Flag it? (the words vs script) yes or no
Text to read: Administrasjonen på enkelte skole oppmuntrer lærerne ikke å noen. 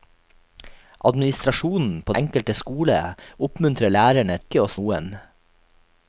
no